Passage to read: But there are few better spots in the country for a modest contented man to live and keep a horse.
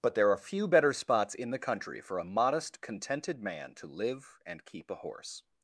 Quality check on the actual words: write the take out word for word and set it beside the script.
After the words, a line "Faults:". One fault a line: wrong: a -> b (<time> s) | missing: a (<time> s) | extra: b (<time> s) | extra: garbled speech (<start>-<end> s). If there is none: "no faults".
But there are few better spots in the country for a modest contented man to live and keep a horse.
Faults:
no faults